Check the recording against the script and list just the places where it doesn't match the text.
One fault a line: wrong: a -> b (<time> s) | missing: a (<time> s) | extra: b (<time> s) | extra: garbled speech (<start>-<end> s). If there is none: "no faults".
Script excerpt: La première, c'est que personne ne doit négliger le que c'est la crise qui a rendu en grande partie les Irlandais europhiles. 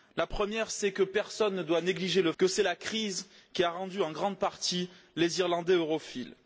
no faults